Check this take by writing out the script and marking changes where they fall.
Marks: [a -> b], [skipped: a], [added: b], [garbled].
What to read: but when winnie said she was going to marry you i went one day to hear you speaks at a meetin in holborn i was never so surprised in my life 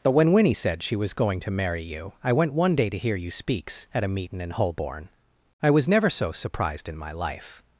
but when winnie said she was going to marry you i went one day to hear you speaks at a meetin in holborn i was never so surprised in my life